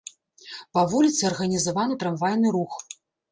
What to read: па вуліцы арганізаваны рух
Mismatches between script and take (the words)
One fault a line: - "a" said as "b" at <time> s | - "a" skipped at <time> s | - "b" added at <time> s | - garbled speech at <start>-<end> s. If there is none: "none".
- "трамвайны" added at 2.1 s